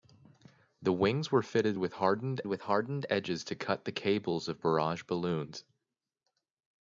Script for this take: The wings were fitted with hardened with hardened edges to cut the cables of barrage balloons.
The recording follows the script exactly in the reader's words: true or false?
true